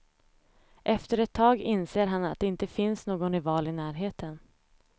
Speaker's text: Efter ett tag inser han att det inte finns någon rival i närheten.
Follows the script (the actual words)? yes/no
yes